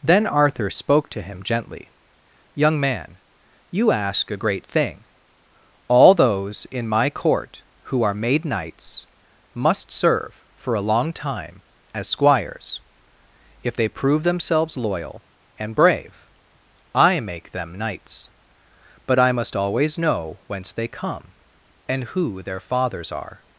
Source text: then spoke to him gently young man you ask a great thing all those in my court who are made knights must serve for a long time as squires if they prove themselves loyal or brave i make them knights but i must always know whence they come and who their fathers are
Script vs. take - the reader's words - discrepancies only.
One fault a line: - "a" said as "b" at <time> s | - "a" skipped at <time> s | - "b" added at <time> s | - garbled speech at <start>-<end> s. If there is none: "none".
- "arthur" added at 0.2 s
- "or" said as "and" at 15.6 s